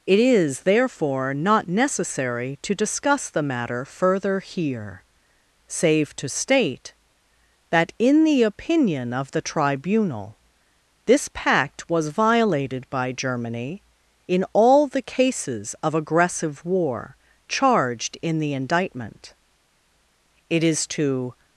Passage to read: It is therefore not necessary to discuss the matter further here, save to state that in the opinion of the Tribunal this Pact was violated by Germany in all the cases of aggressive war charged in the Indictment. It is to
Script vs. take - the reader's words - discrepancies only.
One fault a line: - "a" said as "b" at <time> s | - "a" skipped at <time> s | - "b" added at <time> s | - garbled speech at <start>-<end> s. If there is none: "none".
none